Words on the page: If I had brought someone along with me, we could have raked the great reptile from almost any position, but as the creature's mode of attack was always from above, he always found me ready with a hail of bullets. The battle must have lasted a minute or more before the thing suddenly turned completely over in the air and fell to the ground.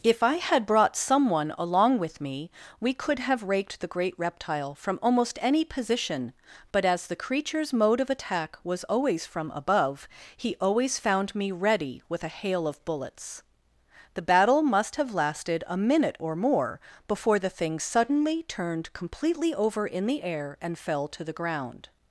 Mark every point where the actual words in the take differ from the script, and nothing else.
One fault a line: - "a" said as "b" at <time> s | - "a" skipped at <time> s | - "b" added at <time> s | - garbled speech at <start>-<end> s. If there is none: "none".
none